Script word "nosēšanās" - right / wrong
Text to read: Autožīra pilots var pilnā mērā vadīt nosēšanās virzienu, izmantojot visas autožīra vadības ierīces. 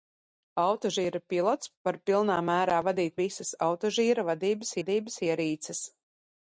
wrong